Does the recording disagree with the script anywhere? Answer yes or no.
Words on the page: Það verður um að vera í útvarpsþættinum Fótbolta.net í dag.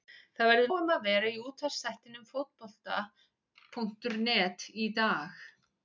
no